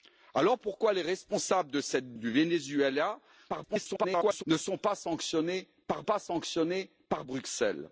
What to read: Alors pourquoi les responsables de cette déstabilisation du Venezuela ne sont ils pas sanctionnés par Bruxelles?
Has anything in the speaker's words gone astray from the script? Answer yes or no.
yes